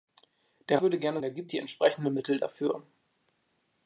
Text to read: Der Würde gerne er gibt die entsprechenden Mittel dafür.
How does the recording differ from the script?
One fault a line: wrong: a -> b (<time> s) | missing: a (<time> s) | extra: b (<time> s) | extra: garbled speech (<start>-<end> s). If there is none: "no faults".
no faults